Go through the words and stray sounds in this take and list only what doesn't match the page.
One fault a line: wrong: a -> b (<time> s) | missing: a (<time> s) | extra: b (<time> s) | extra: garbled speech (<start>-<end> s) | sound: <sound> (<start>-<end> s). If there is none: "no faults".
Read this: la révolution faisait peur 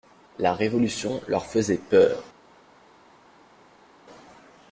extra: leur (1.3 s)